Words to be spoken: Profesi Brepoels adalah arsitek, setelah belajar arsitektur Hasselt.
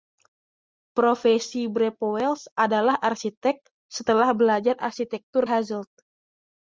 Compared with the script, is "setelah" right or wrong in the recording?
right